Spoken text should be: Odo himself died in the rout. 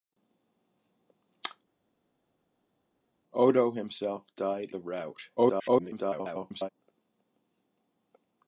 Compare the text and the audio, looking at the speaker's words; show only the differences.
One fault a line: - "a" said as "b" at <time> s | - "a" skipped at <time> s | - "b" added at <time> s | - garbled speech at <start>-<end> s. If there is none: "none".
- "in" skipped at 4.7 s
- garbled speech at 5.4-6.7 s